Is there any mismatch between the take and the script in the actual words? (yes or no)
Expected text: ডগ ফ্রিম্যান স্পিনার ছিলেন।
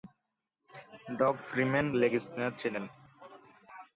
yes